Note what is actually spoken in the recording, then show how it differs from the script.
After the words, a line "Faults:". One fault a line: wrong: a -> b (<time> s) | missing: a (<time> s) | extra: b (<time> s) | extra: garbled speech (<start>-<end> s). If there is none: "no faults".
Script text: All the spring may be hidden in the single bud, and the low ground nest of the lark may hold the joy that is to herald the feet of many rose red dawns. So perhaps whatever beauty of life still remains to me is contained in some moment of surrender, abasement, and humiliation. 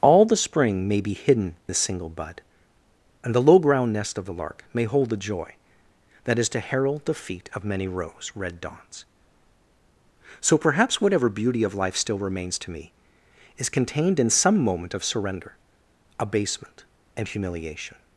All the spring may be hidden the single bud, and the low ground nest of the lark may hold the joy that is to herald the feet of many rose red dawns. So perhaps whatever beauty of life still remains to me is contained in some moment of surrender, abasement, and humiliation.
Faults:
missing: in (1.6 s)